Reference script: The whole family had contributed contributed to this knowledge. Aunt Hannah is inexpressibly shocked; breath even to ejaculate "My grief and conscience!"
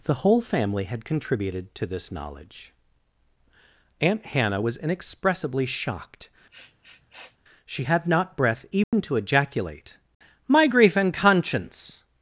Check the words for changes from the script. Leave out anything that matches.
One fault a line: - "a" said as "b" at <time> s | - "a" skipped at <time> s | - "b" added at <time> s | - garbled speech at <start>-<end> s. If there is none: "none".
- "contributed" skipped at 1.7 s
- "is" said as "was" at 4.6 s
- "she had not" added at 7.7 s